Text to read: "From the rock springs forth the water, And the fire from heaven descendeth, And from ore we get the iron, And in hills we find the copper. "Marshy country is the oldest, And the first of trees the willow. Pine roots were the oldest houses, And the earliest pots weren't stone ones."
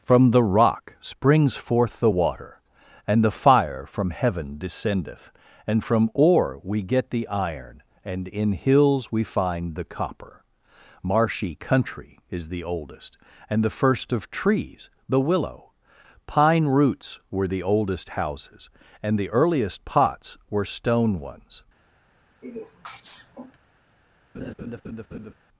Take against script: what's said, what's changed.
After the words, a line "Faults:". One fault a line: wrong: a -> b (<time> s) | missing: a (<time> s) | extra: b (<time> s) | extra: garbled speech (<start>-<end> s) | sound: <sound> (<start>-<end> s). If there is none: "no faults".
"From the rock springs forth the water, And the fire from heaven descendeth, And from ore we get the iron, And in hills we find the copper. "Marshy country is the oldest, And the first of trees the willow. Pine roots were the oldest houses, And the earliest pots were stone ones."
Faults:
wrong: weren't -> were (20.5 s)
sound: sneeze (22.4-23.6 s)
sound: laugh (24.3-25.3 s)